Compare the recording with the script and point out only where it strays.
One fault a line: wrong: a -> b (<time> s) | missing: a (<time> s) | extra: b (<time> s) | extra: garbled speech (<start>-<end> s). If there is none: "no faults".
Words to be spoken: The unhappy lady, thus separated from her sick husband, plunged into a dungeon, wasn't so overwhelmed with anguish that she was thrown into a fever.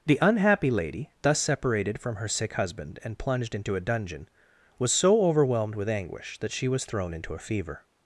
extra: and (3.0 s)
wrong: wasn't -> was (4.8 s)